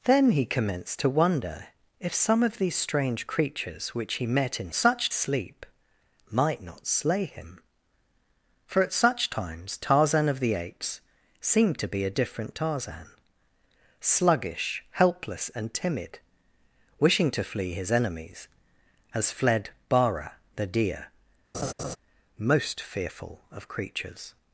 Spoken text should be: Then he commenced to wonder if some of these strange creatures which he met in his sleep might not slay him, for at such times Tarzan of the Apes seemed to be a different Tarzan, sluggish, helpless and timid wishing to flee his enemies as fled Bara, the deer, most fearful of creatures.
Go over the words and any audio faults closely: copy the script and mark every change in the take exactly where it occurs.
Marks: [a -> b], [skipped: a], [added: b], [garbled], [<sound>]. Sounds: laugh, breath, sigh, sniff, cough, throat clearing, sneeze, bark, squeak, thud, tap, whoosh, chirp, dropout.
Then he commenced to wonder if some of these strange creatures which he met in [his -> such] sleep might not slay him, for at such times Tarzan of the Apes seemed to be a different Tarzan, sluggish, helpless and timid wishing to flee his enemies as fled Bara, the deer, [laugh] most fearful of creatures.